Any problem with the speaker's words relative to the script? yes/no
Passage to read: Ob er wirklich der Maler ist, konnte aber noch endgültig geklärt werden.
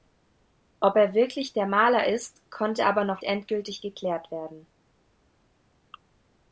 no